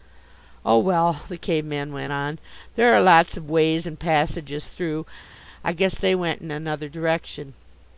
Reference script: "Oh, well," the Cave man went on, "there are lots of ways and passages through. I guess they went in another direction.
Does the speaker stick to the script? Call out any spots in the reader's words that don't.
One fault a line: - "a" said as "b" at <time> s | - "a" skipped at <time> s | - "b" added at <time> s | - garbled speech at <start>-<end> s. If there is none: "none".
none